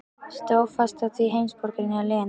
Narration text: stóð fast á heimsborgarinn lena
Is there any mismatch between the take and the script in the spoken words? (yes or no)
yes